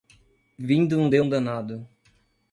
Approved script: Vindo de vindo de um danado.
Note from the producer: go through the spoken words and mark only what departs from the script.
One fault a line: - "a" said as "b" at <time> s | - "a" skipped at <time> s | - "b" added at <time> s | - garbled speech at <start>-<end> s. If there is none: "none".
- "vindo de" skipped at 1.2 s